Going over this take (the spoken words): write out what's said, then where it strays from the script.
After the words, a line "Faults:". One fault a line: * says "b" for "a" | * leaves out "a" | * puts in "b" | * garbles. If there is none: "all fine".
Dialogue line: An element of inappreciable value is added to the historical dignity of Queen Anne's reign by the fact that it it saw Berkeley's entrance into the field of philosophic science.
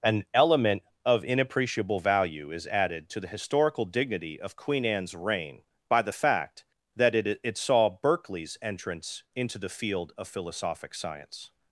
An element of inappreciable value is added to the historical dignity of Queen Anne's reign by the fact that it it saw Berkeley's entrance into the field of philosophic science.
Faults:
all fine